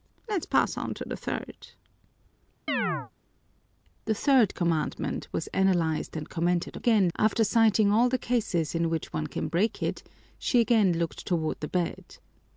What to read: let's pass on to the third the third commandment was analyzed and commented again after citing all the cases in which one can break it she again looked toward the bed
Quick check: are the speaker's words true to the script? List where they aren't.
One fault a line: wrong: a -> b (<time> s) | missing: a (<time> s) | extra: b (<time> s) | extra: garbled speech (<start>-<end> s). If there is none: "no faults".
no faults